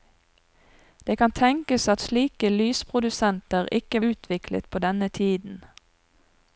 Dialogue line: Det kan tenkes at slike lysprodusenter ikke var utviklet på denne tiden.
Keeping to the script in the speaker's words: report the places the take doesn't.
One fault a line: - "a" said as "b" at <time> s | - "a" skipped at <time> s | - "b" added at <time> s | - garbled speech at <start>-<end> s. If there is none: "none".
- "var" skipped at 4.0 s